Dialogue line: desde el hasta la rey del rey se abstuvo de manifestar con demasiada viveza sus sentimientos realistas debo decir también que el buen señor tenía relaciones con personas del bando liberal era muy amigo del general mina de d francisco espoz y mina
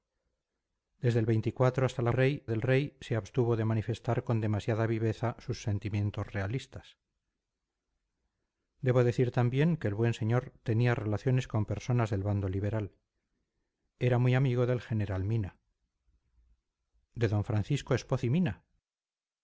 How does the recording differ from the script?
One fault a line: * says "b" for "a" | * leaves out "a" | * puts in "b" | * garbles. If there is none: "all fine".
all fine